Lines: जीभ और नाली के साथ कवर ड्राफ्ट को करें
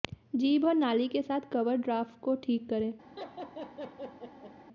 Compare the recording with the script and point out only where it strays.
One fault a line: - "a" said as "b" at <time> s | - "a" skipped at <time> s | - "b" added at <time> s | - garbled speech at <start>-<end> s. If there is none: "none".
- "ठीक" added at 2.4 s